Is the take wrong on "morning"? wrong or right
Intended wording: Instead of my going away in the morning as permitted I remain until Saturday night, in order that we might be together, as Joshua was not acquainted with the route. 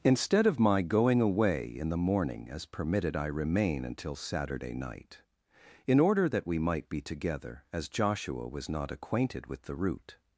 right